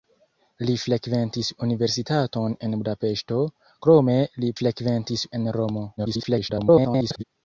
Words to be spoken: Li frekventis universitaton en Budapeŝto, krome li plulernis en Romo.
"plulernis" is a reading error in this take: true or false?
true